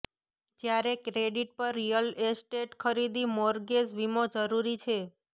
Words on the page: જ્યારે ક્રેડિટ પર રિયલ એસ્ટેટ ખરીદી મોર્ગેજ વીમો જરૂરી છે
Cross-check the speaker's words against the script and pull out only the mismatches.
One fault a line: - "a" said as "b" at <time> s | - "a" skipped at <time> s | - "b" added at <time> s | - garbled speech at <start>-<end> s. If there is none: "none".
none